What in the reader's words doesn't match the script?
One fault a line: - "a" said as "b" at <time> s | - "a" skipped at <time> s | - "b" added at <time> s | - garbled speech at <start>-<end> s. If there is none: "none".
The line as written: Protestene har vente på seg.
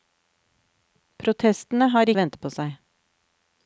none